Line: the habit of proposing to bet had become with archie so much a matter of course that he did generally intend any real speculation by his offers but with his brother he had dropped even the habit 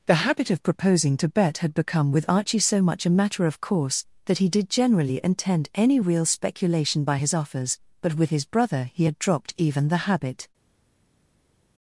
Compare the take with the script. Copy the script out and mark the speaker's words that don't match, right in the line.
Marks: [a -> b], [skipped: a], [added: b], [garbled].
the habit of proposing to bet had become with archie so much a matter of course that he did generally intend any real speculation by his offers but with his brother he had dropped even the habit